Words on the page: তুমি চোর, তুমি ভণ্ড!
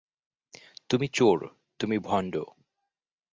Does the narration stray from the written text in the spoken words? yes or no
no